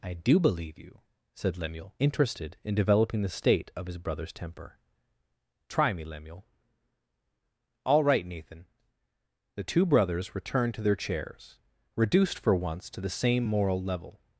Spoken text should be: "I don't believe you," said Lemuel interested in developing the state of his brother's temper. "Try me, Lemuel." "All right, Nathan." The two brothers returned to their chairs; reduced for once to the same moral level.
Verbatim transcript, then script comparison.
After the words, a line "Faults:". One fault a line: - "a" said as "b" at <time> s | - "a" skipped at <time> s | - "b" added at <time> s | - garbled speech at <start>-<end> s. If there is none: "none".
"I do believe you," said Lemuel interested in developing the state of his brother's temper. "Try me, Lemuel." "All right, Nathan." The two brothers returned to their chairs; reduced for once to the same moral level.
Faults:
- "don't" said as "do" at 0.1 s